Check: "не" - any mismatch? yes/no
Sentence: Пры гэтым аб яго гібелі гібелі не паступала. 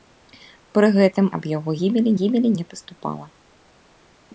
no